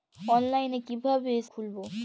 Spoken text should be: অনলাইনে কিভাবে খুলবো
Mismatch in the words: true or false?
false